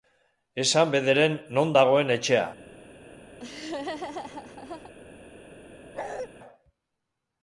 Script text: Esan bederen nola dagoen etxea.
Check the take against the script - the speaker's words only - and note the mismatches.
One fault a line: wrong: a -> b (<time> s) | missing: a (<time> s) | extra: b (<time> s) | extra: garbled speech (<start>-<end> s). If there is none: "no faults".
wrong: nola -> non (1.6 s)